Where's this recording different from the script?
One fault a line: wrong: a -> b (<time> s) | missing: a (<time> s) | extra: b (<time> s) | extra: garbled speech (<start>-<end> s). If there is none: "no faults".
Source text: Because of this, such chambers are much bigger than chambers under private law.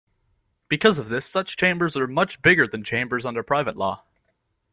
no faults